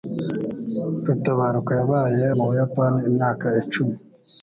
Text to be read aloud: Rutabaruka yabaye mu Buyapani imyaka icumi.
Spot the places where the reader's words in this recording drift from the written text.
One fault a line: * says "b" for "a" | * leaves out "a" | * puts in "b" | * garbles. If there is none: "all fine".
all fine